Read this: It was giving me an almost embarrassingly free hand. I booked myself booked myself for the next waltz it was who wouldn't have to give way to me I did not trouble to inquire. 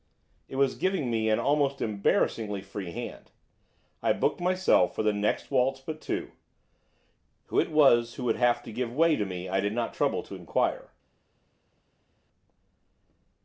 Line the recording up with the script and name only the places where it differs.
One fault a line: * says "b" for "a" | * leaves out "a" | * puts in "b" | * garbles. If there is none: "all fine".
* leaves out "booked myself"
* puts in "but two who"
* says "would" for "wouldn't"